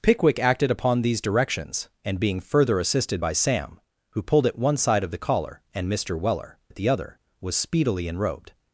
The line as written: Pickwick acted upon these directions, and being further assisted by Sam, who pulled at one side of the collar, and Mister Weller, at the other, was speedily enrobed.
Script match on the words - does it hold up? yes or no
yes